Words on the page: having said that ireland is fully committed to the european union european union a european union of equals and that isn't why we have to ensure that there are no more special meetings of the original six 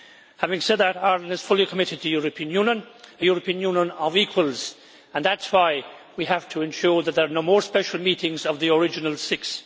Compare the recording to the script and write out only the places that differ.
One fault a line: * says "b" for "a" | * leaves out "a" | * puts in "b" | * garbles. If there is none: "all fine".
* leaves out "european union"
* says "is" for "isn't"